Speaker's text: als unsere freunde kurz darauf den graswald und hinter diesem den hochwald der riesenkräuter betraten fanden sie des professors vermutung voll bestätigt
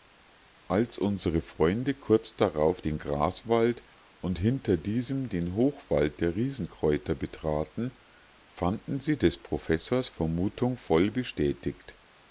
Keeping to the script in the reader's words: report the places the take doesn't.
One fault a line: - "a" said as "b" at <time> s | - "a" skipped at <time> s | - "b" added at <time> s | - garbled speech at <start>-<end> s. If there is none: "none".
none